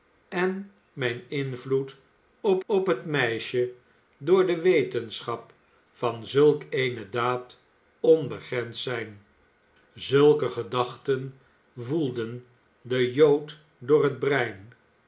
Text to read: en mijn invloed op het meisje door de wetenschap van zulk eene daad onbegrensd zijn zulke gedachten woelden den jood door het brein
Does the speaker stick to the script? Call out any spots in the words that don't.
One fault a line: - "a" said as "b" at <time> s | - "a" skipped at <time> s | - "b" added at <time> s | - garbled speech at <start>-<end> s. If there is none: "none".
- "op" added at 2.6 s